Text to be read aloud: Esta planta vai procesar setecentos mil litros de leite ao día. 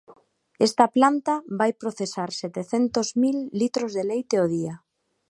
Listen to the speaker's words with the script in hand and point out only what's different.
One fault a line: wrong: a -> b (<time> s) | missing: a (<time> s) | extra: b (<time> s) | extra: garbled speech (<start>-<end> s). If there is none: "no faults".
no faults